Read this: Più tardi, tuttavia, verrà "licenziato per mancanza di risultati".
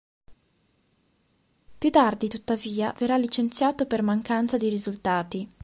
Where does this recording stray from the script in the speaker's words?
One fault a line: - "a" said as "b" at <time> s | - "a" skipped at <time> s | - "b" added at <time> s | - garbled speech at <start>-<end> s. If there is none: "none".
none